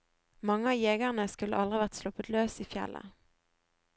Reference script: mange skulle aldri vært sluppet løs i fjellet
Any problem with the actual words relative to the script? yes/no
yes